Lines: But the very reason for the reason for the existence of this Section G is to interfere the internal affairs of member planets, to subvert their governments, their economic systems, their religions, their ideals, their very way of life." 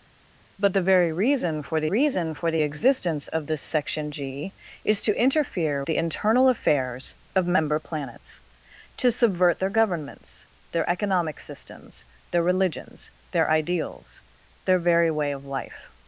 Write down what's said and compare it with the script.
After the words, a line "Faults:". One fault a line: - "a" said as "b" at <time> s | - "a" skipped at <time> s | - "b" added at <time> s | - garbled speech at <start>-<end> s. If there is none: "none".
But the very reason for the reason for the existence of this Section G is to interfere the internal affairs of member planets, to subvert their governments, their economic systems, their religions, their ideals, their very way of life."
Faults:
none